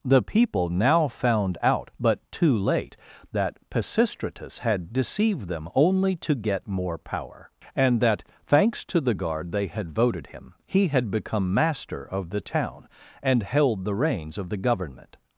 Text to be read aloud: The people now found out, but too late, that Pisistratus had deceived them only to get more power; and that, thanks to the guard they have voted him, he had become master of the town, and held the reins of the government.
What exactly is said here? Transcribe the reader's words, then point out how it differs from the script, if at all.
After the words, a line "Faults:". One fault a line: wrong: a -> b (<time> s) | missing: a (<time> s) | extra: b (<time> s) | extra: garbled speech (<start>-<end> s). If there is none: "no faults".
The people now found out, but too late, that Pisistratus had deceived them only to get more power; and that, thanks to the guard they had voted him, he had become master of the town, and held the reins of the government.
Faults:
wrong: have -> had (9.7 s)